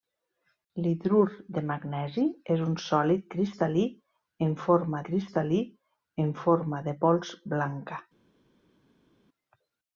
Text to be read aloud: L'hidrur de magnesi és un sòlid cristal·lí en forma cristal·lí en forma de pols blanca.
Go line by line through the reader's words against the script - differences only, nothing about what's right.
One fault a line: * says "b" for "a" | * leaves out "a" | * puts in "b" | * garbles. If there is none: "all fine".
all fine